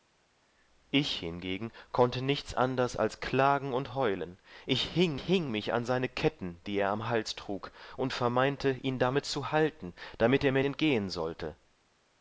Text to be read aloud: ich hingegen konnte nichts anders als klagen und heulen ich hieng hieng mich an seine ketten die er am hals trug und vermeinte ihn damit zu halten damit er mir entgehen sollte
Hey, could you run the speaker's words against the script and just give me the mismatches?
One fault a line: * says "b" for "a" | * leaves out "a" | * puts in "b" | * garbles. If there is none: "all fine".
all fine